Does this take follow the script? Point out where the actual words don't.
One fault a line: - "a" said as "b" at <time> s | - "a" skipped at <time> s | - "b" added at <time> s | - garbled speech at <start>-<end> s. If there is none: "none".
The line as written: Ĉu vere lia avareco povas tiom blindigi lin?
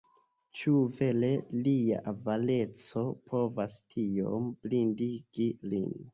none